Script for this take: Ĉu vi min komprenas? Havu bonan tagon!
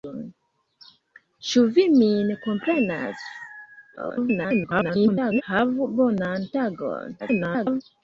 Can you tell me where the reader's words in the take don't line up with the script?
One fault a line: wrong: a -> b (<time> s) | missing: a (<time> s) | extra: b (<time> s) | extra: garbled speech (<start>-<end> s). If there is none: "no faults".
extra: garbled speech (4.0-5.4 s)
extra: garbled speech (7.2-7.8 s)